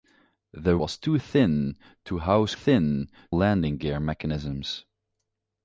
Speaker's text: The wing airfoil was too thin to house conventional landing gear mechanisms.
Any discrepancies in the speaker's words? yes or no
yes